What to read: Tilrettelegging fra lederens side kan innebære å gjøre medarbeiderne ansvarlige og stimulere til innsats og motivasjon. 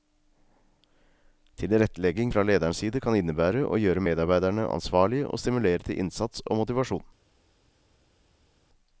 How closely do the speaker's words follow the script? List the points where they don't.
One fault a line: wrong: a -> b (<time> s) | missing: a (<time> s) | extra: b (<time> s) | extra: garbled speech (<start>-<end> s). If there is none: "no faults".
no faults